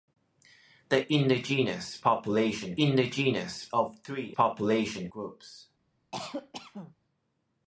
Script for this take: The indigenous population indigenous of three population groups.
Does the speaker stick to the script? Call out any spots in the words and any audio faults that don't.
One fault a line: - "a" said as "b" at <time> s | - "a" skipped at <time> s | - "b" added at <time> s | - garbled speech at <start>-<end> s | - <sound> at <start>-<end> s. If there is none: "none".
- cough at 6.1-6.9 s